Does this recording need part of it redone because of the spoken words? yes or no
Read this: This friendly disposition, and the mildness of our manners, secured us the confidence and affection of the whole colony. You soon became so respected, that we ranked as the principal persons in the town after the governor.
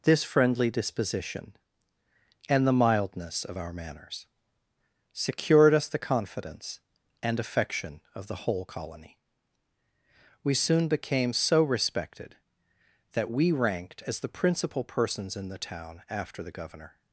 yes